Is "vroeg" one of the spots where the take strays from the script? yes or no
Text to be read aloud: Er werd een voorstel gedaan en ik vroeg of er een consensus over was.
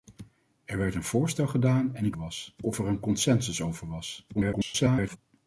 yes